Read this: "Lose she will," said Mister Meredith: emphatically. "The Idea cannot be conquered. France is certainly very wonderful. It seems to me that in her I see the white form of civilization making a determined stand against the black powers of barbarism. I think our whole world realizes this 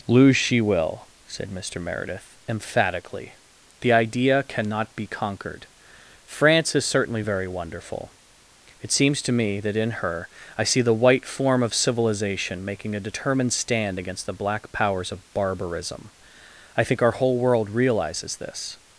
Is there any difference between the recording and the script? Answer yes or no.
no